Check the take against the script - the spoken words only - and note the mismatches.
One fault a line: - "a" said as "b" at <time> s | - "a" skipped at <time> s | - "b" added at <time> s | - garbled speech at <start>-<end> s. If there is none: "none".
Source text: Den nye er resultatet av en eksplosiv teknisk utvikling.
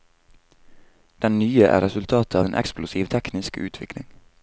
none